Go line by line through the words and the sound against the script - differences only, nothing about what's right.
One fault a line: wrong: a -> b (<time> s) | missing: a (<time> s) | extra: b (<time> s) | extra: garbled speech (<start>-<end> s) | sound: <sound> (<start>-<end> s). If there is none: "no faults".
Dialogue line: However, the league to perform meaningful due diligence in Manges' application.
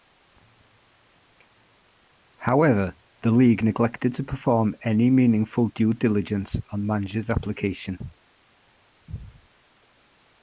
extra: neglected (3.6 s)
extra: any (4.8 s)
wrong: in -> on (6.7 s)